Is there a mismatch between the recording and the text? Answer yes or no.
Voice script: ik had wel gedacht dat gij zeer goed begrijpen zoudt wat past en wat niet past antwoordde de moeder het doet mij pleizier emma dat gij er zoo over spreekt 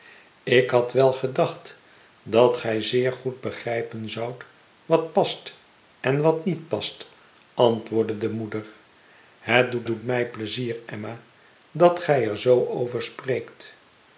yes